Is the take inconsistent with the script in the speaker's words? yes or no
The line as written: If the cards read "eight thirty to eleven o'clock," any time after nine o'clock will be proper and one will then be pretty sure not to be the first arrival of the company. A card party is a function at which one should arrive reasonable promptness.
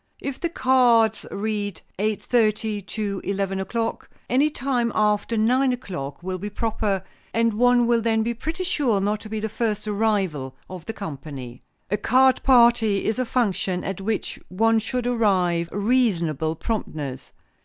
no